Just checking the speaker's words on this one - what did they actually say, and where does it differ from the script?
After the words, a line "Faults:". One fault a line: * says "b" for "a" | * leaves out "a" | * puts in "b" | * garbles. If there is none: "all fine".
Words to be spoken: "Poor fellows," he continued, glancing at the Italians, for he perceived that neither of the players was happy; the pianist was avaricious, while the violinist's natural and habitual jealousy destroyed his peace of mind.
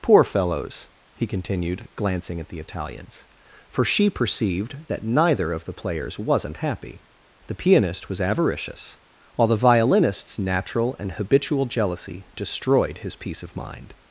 "Poor fellows," he continued, glancing at the Italians, for she perceived that neither of the players wasn't happy; the pianist was avaricious, while the violinist's natural and habitual jealousy destroyed his peace of mind.
Faults:
* says "she" for "he"
* says "wasn't" for "was"